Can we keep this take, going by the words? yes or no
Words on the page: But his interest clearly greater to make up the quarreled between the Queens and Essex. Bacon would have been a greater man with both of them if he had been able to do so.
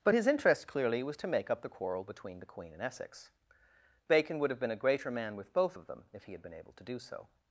no